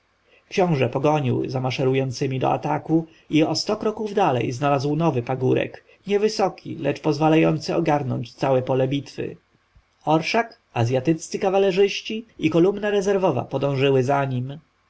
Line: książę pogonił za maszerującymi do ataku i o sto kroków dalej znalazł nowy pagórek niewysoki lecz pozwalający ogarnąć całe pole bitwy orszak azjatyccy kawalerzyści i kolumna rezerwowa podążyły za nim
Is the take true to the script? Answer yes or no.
yes